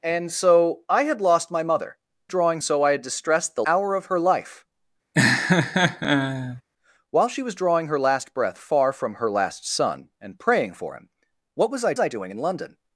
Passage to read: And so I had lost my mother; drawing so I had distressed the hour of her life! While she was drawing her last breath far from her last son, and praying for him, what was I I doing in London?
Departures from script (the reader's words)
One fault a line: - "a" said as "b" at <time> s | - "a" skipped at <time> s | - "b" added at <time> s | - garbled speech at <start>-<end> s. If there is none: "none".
none